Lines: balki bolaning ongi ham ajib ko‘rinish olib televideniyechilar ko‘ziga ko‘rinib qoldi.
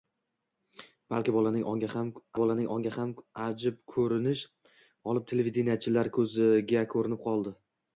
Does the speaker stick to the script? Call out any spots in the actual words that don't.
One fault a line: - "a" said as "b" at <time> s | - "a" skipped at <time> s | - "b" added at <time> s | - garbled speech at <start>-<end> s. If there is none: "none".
- "bolaning ongi ham" added at 2.4 s